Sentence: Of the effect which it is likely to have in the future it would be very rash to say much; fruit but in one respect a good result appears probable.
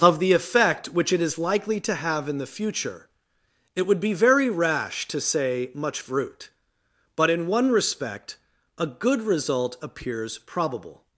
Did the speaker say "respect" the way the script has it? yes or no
yes